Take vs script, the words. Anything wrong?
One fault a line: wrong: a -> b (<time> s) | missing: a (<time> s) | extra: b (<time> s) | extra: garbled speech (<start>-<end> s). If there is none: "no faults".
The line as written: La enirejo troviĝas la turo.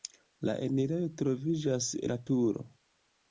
no faults